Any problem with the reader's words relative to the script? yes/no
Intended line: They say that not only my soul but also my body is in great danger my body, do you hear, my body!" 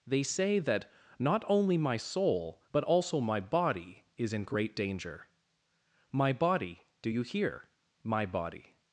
no